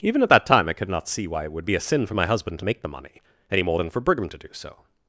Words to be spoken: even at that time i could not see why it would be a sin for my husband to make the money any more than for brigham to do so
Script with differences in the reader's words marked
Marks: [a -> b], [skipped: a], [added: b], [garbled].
even at that time i could not see why it would be a sin for my husband to make the money any more than for brigham to do so